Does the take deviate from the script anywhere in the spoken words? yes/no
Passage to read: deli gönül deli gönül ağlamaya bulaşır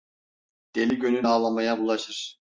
yes